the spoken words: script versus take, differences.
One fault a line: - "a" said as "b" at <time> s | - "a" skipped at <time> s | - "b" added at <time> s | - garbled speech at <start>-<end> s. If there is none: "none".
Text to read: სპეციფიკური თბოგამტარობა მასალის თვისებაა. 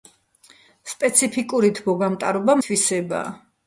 - "მასალის" skipped at 2.6 s